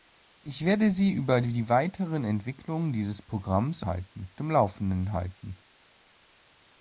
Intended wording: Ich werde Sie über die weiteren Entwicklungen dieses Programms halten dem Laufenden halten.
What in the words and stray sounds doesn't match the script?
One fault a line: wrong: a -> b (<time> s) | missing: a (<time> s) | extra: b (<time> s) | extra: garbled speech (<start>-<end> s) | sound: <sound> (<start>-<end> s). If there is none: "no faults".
no faults